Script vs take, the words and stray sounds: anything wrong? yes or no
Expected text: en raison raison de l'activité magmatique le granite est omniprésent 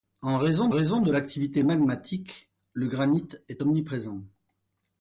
no